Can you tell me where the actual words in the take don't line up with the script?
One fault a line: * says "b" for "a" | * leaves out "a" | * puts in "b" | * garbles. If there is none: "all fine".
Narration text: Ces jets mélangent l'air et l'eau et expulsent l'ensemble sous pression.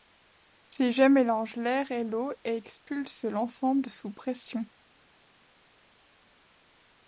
all fine